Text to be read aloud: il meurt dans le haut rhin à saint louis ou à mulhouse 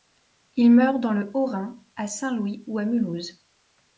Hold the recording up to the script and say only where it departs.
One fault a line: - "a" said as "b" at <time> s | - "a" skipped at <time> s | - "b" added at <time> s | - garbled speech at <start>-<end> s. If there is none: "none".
none